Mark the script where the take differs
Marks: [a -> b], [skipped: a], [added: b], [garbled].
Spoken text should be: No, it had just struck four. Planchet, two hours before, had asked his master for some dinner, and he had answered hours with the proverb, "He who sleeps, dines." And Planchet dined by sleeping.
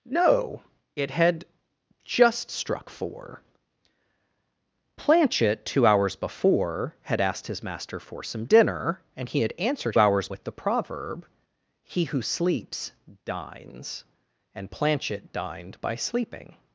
No, it had just struck four. Planchet, two hours before, had asked his master for some dinner, and he had answered hours with the proverb, "He who sleeps, dines." And Planchet dined by sleeping.